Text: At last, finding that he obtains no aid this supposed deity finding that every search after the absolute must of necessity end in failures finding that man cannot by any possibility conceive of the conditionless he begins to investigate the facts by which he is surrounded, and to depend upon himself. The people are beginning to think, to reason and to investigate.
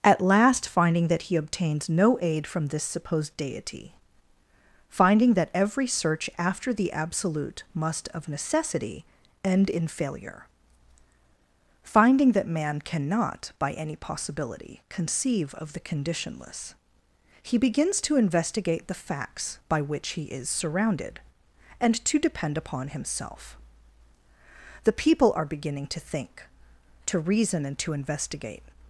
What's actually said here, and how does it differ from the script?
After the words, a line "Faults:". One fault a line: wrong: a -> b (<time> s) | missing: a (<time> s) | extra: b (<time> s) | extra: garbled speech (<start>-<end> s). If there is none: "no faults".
At last, finding that he obtains no aid from this supposed deity finding that every search after the absolute must of necessity end in failure finding that man cannot by any possibility conceive of the conditionless he begins to investigate the facts by which he is surrounded, and to depend upon himself. The people are beginning to think, to reason and to investigate.
Faults:
extra: from (2.5 s)
wrong: failures -> failure (9.8 s)